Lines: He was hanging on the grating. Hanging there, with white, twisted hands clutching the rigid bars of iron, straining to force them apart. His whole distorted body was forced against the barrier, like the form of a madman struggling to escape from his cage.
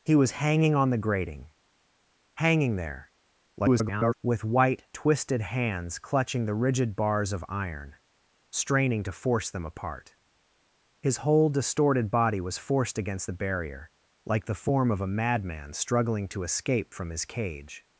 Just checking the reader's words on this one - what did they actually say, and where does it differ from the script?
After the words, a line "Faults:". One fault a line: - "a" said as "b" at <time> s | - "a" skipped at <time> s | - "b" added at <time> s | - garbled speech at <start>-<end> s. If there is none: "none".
He was hanging on the grating. Hanging there, [garbled] with white, twisted hands clutching the rigid bars of iron, straining to force them apart. His whole distorted body was forced against the barrier, like the form of a madman struggling to escape from his cage.
Faults:
- garbled speech at 3.6-4.1 s